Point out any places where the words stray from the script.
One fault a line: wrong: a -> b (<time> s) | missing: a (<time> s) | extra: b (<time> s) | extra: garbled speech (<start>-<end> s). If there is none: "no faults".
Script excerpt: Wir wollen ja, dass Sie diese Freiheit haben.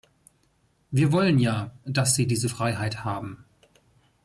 no faults